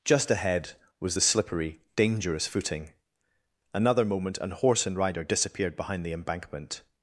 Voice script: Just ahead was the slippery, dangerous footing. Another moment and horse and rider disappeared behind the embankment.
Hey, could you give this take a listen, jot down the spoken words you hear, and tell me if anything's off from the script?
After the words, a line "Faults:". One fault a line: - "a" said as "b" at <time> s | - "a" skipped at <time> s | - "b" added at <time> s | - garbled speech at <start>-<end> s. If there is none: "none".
Just ahead was the slippery, dangerous footing. Another moment and horse and rider disappeared behind the embankment.
Faults:
none